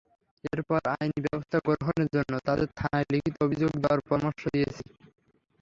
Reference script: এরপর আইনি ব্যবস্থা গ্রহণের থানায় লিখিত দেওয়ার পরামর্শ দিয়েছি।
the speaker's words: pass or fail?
fail